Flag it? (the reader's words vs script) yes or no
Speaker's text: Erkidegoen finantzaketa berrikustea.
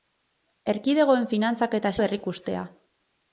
no